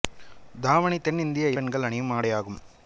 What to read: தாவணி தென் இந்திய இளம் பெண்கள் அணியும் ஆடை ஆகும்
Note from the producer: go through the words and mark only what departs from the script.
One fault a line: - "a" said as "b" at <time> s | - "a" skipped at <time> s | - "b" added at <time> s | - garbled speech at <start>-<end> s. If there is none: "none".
- "இளம்" skipped at 1.5 s